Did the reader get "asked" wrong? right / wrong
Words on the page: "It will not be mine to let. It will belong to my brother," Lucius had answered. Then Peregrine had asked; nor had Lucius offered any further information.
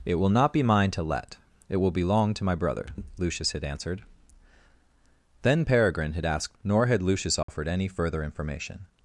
right